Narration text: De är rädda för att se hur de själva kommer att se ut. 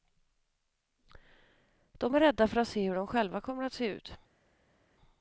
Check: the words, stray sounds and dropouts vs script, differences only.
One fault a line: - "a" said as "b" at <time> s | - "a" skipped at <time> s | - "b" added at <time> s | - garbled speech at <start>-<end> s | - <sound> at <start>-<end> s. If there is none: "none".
none